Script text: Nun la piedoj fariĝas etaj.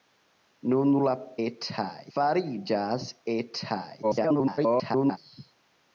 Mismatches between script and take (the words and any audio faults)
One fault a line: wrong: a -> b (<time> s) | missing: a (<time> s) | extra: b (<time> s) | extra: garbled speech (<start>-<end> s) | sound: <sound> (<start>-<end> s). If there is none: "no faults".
wrong: piedoj -> etaj (1.5 s)
extra: garbled speech (4.0-5.2 s)